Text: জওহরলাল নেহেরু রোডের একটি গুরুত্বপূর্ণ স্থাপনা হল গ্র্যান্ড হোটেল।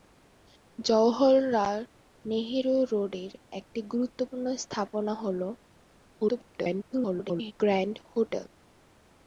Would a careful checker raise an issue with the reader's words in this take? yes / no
yes